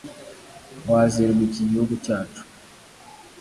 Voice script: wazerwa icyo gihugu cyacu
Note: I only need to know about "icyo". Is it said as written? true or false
false